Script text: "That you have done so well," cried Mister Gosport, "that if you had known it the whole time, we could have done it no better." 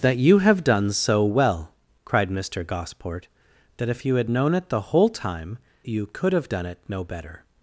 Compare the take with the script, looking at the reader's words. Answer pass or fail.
fail